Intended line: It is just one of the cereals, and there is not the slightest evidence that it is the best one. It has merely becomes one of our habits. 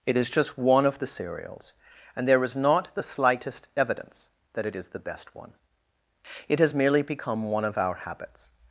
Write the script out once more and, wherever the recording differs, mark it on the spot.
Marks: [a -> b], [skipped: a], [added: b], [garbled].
It is just one of the cereals, and there is not the slightest evidence that it is the best one. It has merely [becomes -> become] one of our habits.